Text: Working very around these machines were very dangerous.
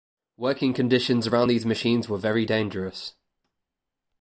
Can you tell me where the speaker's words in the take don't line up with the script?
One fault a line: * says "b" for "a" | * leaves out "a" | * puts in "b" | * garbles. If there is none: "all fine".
* says "conditions" for "very"